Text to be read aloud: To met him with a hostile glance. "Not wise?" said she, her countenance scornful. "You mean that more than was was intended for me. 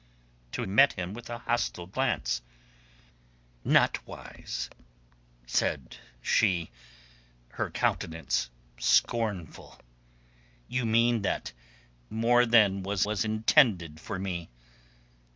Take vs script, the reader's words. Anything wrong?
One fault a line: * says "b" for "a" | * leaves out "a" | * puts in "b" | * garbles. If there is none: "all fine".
all fine